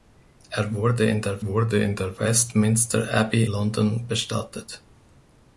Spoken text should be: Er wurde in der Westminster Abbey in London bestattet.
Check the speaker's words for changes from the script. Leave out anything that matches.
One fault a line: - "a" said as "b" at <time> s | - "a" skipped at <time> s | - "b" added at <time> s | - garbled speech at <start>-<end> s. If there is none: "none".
- "wurde in der" added at 1.4 s
- "in" skipped at 3.5 s